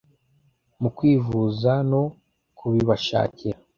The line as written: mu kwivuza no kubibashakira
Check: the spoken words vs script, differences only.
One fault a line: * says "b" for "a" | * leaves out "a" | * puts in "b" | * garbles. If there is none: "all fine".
all fine